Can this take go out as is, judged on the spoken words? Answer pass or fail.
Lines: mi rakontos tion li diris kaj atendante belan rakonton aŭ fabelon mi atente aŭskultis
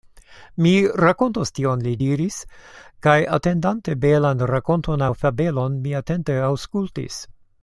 pass